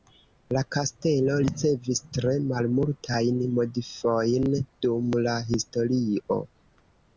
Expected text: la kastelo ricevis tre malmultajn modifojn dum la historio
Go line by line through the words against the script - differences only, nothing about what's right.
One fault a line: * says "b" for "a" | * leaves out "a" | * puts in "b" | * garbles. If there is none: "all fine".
all fine